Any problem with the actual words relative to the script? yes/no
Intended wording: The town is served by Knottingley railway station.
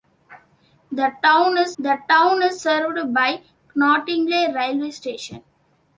yes